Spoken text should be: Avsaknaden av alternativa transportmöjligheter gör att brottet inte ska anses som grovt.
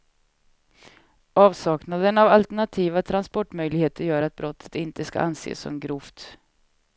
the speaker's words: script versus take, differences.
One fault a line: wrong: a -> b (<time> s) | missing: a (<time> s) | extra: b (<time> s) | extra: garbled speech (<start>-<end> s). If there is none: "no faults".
no faults